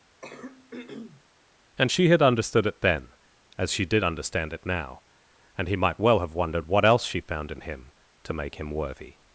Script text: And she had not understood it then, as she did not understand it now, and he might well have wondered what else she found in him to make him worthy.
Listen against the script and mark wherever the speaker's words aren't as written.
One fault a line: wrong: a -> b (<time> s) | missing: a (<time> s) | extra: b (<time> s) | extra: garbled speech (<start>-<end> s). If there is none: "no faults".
missing: not (2.2 s)
missing: not (4.1 s)